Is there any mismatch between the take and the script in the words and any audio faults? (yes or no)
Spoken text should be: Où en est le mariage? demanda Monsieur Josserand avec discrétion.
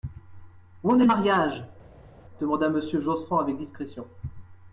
no